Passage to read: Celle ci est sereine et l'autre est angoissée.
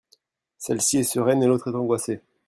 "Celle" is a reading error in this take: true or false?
false